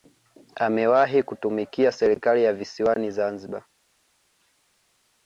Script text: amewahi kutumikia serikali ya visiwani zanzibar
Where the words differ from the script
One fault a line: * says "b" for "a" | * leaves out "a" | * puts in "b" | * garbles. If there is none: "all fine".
all fine